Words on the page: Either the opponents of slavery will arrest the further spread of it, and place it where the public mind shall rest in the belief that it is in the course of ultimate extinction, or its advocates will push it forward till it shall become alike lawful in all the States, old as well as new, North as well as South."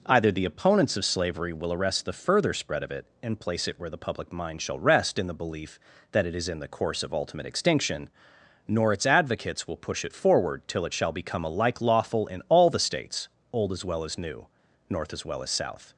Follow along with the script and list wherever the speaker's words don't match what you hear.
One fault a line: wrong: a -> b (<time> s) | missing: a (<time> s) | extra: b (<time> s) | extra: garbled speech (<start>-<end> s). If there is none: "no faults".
wrong: or -> nor (8.7 s)